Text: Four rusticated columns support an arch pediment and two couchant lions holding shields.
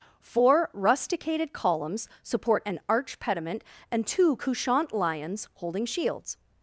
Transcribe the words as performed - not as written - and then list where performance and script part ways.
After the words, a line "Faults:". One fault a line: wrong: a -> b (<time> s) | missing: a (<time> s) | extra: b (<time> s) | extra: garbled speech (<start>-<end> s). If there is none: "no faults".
Four rusticated columns support an arch pediment and two couchant lions holding shields.
Faults:
no faults